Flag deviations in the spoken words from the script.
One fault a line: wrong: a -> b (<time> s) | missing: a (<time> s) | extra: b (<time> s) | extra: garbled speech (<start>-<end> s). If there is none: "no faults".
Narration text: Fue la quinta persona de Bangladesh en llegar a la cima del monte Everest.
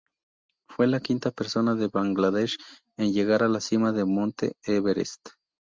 no faults